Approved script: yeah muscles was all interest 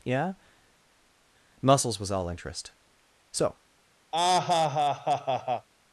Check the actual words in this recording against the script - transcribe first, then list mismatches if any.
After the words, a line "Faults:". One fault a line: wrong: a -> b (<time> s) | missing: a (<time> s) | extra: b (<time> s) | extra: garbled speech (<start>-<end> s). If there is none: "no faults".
yeah muscles was all interest so
Faults:
extra: so (3.3 s)